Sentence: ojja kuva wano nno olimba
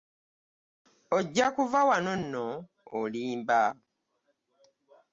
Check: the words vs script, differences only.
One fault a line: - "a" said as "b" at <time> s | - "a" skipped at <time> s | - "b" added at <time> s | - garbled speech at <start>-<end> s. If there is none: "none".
none